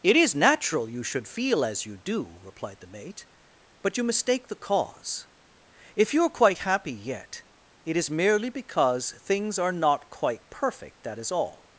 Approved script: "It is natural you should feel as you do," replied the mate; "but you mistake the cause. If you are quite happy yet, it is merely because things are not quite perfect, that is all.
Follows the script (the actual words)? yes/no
yes